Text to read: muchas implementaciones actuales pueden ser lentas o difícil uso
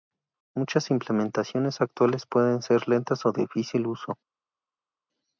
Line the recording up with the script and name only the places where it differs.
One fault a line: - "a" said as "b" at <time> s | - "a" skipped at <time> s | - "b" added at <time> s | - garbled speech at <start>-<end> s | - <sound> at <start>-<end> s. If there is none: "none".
none